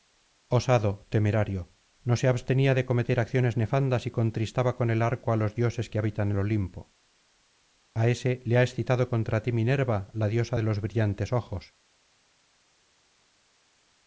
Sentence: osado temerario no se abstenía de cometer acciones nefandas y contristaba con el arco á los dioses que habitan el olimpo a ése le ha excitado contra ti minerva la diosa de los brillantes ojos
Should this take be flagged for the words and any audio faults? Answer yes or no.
no